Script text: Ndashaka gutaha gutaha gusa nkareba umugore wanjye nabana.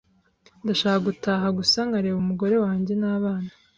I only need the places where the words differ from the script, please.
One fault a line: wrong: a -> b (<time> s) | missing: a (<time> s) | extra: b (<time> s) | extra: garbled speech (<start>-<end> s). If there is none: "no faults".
missing: gutaha (1.5 s)